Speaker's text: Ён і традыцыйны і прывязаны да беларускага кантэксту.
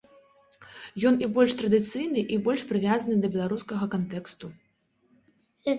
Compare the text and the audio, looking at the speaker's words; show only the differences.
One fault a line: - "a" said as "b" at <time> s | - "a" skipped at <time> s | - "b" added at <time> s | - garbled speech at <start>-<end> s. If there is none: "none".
- "больш" added at 1.4 s
- "больш" added at 2.5 s